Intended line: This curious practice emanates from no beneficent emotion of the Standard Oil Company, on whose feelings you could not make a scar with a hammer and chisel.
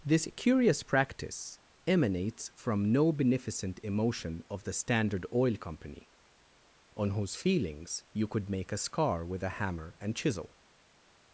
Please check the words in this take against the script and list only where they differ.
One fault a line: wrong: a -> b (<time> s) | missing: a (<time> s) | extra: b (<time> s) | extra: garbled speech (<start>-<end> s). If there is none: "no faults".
missing: not (8.5 s)